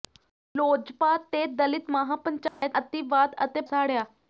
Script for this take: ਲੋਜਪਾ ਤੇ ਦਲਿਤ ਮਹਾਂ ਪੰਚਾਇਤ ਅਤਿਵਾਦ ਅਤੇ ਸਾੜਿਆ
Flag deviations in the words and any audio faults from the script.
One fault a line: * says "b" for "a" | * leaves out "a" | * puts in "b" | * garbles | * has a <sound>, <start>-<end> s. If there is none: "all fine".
* has a dropout, 2.5-2.6 s